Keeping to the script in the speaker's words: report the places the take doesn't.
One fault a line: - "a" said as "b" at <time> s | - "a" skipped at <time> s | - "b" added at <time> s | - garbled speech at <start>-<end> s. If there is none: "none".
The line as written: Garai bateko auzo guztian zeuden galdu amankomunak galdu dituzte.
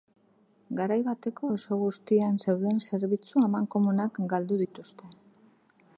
- "galdu" said as "zerbitzu" at 2.9 s